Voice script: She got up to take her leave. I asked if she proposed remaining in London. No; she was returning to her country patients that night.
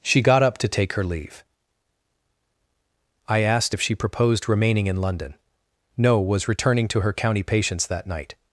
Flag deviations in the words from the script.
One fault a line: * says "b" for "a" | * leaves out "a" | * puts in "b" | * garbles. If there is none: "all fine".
* leaves out "she"
* says "county" for "country"